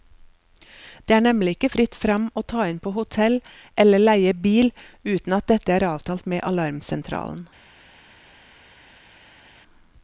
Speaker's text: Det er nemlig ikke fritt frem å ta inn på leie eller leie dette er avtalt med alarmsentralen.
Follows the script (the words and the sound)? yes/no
no